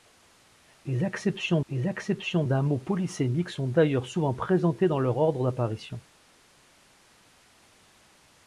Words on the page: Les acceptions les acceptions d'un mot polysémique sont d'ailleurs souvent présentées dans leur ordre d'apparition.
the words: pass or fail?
pass